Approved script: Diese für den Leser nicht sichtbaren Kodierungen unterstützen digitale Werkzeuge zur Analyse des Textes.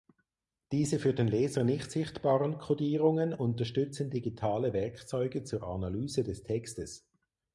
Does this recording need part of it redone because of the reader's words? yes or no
no